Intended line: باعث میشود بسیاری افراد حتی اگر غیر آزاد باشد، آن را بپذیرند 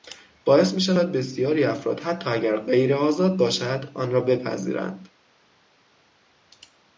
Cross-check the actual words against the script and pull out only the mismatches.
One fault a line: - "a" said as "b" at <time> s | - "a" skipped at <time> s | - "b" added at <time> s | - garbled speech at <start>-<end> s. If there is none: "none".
none